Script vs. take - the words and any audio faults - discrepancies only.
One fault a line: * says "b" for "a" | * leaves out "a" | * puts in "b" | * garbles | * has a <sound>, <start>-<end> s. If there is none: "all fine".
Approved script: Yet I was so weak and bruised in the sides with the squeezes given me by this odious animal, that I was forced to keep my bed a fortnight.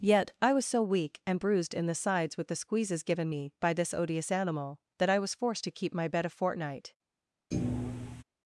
* has a thud, 7.5-8.2 s